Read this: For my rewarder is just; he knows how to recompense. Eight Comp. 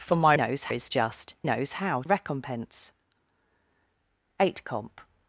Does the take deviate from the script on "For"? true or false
false